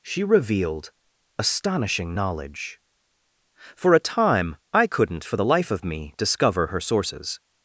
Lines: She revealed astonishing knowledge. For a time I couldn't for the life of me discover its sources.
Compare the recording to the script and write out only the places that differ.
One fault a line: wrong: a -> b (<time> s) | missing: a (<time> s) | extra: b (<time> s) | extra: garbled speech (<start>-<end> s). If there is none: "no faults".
wrong: its -> her (6.7 s)